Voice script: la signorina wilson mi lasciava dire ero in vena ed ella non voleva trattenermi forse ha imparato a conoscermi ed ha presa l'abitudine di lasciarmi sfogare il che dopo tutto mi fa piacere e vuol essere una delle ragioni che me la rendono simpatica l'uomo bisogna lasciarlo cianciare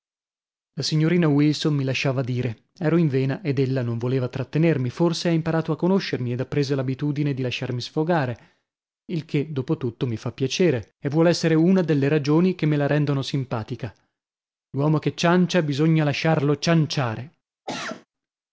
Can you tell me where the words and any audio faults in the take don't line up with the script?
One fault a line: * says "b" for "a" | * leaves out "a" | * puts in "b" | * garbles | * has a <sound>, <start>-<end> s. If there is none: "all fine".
* puts in "che ciancia"
* has a cough, 17.7-18.1 s